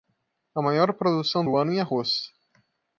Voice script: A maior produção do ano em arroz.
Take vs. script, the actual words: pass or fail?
pass